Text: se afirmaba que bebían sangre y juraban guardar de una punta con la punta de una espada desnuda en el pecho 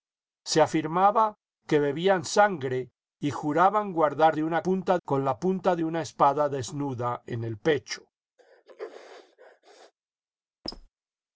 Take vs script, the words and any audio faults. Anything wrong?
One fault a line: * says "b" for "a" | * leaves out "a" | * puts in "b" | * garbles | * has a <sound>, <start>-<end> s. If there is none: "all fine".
* has a sneeze, 8.4-9.9 s
* has a squeak, 10.6-10.9 s